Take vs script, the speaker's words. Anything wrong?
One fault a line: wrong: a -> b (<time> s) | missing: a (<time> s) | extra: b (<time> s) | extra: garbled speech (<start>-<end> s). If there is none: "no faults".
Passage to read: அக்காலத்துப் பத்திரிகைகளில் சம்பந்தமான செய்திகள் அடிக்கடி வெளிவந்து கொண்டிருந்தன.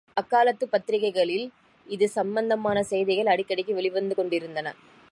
extra: இது (1.9 s)